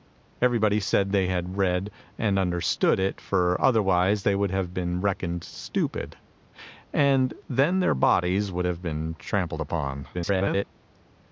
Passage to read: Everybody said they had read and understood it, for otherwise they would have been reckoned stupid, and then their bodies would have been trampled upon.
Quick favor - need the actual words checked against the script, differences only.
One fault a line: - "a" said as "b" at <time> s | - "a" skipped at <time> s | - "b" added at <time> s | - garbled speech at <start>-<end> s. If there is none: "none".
- garbled speech at 10.1-10.6 s